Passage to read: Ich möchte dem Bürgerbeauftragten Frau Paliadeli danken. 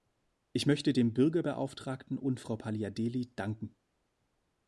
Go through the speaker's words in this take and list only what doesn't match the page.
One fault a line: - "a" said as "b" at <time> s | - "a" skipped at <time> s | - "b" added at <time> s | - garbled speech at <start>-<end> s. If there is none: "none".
- "und" added at 2.2 s